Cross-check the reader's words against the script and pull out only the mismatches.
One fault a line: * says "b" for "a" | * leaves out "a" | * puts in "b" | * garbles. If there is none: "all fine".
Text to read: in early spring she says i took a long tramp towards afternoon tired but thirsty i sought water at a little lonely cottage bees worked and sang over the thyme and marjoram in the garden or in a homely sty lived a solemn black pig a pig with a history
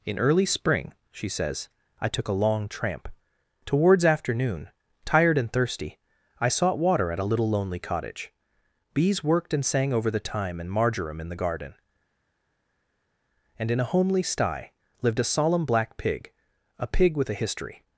* says "and" for "but"
* says "and" for "or"